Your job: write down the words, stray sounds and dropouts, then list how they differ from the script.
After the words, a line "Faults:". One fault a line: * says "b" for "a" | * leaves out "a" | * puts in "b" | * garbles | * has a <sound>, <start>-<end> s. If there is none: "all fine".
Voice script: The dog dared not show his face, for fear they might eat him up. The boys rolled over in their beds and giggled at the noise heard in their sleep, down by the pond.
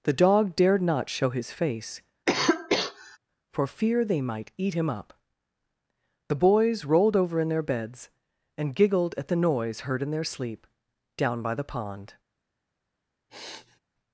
The dog dared not show his face, for fear they might eat him up. The boys rolled over in their beds and giggled at the noise heard in their sleep, down by the pond.
Faults:
* has a cough, 2.3-3.2 s
* has a sniff, 13.3-13.8 s